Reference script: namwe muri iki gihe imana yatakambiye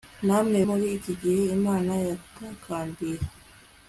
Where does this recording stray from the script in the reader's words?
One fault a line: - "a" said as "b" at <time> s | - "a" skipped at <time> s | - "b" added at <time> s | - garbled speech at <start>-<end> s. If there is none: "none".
none